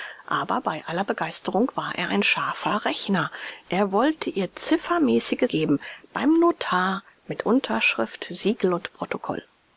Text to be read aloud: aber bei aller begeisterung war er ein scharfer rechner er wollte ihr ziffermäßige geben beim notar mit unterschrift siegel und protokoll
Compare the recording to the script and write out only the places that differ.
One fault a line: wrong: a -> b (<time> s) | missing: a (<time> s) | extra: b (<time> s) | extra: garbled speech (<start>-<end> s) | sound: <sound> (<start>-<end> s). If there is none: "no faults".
no faults